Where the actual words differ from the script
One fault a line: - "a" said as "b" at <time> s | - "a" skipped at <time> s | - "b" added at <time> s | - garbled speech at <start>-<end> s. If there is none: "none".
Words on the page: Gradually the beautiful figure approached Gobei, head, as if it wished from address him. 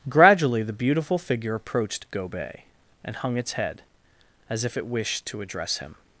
- "and hung its" added at 3.0 s
- "from" said as "to" at 5.3 s